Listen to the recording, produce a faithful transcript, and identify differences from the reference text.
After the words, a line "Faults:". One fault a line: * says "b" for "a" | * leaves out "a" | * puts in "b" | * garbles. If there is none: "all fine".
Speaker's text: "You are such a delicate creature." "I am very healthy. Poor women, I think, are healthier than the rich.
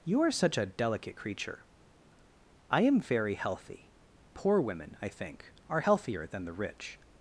"You are such a delicate creature." "I am very healthy. Poor women, I think, are healthier than the rich.
Faults:
all fine